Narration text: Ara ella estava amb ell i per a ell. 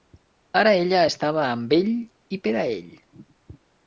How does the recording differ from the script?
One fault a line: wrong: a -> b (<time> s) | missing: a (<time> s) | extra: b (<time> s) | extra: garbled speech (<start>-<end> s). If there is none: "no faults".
no faults